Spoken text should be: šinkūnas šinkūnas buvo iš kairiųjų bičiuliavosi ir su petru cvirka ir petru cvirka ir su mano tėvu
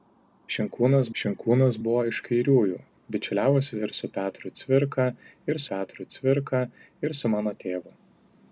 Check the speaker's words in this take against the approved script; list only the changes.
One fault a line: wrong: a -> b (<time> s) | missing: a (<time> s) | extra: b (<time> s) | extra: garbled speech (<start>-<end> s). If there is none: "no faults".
no faults